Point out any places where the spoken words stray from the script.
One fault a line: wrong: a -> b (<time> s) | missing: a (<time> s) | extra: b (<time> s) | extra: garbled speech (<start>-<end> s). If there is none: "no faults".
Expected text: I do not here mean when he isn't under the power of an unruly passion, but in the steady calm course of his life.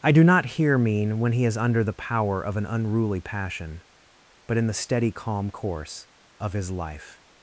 wrong: isn't -> is (1.4 s)